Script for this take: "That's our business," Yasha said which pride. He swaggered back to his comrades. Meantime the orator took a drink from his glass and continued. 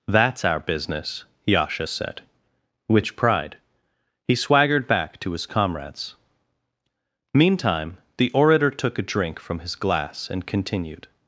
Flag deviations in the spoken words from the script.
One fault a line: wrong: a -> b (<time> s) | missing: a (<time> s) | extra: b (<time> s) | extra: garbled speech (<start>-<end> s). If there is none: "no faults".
no faults